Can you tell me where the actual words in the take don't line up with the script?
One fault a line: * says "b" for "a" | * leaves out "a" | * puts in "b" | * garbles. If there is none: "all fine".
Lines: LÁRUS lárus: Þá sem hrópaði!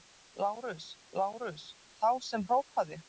all fine